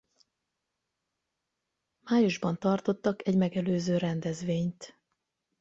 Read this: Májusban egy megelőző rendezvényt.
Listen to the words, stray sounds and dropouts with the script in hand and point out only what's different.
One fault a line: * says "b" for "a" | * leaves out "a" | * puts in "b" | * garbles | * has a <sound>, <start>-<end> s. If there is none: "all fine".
* puts in "tartottak"